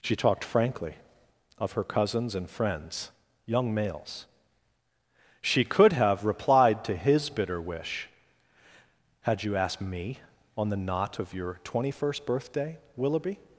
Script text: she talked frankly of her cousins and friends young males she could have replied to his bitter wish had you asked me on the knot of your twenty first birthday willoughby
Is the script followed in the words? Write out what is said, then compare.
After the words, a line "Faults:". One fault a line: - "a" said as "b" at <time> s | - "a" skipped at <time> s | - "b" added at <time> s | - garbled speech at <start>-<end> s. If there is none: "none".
she talked frankly of her cousins and friends young males she could have replied to his bitter wish had you asked me on the knot of your twenty first birthday willoughby
Faults:
none